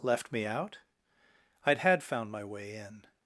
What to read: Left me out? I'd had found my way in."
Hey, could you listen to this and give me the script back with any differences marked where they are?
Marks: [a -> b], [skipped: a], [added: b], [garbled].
Left me out? I'd had found my way in."